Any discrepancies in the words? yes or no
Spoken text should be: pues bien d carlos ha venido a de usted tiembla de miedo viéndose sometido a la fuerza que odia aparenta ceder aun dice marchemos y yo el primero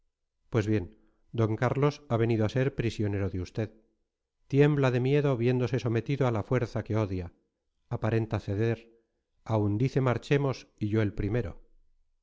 yes